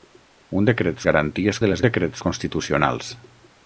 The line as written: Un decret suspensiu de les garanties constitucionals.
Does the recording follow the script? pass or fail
fail